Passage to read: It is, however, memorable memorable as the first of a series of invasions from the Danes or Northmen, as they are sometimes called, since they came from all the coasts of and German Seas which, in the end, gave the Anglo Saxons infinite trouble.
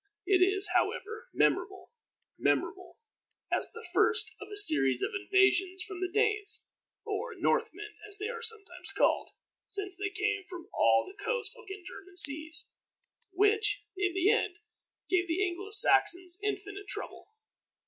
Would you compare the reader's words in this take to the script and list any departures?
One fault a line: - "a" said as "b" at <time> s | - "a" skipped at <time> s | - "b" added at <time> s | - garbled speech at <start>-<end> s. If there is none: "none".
none